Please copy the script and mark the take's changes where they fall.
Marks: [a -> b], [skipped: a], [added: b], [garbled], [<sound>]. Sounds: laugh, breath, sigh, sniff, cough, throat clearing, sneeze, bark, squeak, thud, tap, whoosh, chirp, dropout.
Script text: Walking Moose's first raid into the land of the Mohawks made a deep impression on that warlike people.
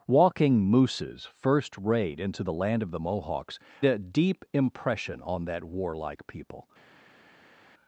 Walking Moose's first raid into the land of the Mohawks [skipped: made] a deep impression on that warlike people.